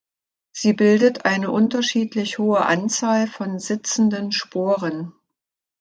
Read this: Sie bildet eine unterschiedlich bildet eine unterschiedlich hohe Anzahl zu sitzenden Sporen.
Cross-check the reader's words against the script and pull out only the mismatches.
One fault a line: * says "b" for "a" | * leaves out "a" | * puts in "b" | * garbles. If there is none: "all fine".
* leaves out "bildet eine unterschiedlich"
* says "von" for "zu"